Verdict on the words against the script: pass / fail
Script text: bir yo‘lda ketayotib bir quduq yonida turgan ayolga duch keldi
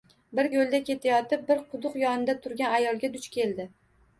pass